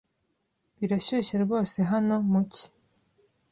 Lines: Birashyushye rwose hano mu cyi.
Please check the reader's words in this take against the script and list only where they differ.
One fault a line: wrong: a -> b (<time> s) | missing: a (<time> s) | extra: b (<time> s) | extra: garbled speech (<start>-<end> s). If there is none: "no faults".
no faults